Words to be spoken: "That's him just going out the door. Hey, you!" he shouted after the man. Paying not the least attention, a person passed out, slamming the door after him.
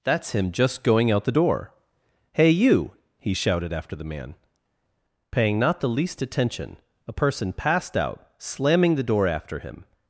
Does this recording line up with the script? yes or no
yes